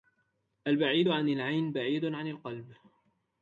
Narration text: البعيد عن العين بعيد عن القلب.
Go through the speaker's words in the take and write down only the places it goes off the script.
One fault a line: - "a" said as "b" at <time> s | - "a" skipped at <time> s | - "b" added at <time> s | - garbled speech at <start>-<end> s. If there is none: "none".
none